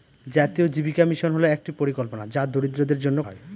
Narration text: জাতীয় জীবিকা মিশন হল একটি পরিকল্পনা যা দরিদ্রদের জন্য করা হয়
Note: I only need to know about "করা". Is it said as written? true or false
false